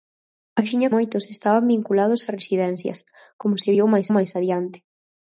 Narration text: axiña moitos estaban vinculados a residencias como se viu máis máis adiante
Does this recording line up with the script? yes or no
yes